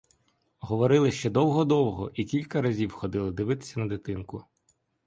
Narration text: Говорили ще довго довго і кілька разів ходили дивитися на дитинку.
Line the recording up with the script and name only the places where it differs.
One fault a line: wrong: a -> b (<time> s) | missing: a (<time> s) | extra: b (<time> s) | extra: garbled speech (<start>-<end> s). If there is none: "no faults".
no faults